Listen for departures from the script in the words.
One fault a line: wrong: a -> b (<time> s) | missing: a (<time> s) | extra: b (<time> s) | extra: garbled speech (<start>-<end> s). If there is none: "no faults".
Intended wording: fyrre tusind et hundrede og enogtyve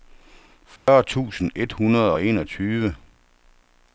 no faults